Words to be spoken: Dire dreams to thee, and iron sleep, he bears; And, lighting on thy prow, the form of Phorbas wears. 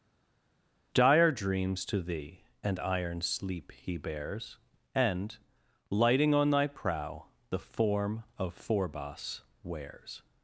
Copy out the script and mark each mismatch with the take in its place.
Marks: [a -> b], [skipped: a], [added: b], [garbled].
Dire dreams to thee, and iron sleep, he bears; And, lighting on thy prow, the form of Phorbas wears.